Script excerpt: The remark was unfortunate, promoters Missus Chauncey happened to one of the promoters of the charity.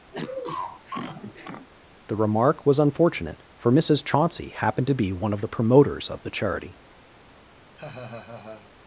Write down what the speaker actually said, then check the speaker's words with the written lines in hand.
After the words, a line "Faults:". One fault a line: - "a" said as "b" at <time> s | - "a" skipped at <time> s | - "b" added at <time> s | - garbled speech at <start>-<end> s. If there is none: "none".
The remark was unfortunate, for Missus Chauncey happened to be one of the promoters of the charity.
Faults:
- "promoters" said as "for" at 3.6 s
- "be" added at 4.9 s